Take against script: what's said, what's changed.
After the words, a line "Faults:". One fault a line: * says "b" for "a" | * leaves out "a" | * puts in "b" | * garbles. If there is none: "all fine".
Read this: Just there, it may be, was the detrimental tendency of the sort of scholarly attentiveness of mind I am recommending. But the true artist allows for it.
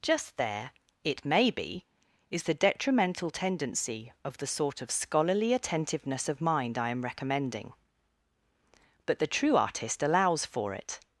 Just there, it may be, is the detrimental tendency of the sort of scholarly attentiveness of mind I am recommending. But the true artist allows for it.
Faults:
* says "is" for "was"